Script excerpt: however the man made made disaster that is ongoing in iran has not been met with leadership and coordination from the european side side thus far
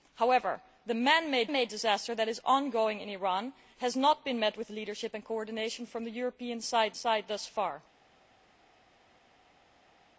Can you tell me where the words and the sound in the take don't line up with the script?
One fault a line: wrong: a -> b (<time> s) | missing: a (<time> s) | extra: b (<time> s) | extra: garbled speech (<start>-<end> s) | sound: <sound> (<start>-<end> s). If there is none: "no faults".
no faults